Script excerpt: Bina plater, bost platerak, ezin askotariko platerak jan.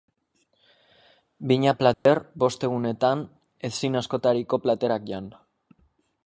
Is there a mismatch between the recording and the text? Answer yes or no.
yes